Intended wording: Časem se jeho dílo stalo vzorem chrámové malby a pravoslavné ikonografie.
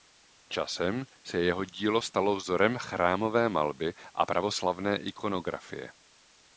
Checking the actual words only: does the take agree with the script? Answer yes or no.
yes